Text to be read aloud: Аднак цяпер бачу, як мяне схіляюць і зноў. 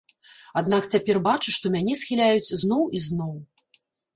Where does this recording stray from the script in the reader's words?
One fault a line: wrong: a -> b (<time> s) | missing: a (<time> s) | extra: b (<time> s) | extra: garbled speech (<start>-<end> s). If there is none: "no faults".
wrong: як -> што (1.6 s)
extra: зноў (2.6 s)